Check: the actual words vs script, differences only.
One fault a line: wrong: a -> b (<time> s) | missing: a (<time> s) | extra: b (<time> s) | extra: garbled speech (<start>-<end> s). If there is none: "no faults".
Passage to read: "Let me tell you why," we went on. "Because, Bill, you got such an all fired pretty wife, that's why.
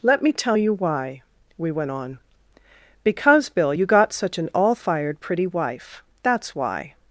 no faults